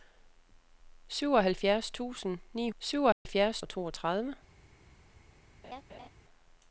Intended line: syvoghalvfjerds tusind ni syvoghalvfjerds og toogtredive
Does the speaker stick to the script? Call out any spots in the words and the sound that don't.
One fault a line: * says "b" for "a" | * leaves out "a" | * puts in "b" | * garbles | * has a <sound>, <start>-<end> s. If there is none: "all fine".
* has a dropout, 3.1-3.3 s
* has a laugh, 5.6-6.1 s